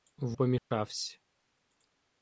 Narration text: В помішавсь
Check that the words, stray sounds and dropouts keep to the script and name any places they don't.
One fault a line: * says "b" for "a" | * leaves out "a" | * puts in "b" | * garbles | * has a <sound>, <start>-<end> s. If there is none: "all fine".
* has a dropout, 0.6-0.7 s